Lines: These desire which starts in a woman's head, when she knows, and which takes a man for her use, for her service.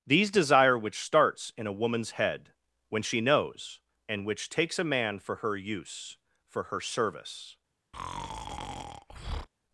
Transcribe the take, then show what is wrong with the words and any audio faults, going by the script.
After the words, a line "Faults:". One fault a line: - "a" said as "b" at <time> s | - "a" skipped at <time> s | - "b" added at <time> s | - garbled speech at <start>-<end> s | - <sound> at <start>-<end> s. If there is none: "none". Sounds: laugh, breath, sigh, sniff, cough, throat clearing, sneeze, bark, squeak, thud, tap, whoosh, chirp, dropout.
These desire which starts in a woman's head, when she knows, and which takes a man for her use, for her service.
Faults:
- breath at 7.9-9.5 s